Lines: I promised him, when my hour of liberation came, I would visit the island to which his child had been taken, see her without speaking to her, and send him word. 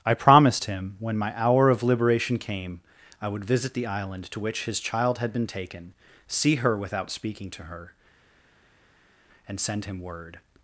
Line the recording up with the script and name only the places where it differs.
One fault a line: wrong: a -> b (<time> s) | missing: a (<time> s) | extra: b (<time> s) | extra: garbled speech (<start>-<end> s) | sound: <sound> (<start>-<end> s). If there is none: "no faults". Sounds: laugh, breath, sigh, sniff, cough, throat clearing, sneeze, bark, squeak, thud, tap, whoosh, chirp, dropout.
no faults